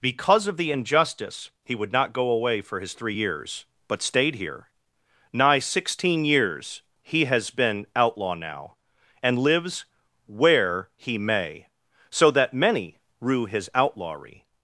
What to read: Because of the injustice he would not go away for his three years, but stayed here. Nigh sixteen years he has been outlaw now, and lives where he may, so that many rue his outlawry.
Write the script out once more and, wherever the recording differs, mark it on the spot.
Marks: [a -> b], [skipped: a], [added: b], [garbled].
Because of the injustice he would not go away for his three years, but stayed here. Nigh sixteen years he has been outlaw now, and lives where he may, so that many rue his outlawry.